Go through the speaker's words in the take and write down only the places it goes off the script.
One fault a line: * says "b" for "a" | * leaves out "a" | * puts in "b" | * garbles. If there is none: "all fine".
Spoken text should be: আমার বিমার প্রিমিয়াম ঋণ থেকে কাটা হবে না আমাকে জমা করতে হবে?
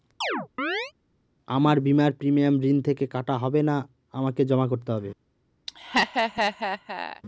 all fine